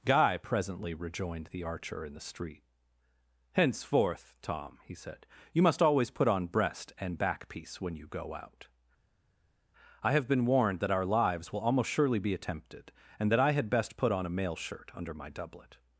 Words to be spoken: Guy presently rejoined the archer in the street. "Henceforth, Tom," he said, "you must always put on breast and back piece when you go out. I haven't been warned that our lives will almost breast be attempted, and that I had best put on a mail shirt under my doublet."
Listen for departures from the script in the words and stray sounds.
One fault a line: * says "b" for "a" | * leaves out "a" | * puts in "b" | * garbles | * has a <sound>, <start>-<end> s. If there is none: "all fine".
* says "have" for "haven't"
* says "surely" for "breast"